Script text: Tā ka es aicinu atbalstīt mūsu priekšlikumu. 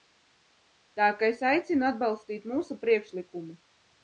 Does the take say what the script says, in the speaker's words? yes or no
yes